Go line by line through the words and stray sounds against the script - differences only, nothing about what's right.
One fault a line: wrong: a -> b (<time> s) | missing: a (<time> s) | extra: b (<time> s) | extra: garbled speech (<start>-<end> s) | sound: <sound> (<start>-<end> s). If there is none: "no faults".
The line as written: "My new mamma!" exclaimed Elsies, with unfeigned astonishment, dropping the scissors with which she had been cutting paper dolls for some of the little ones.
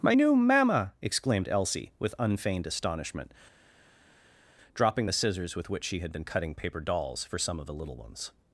wrong: Elsies -> Elsie (1.5 s)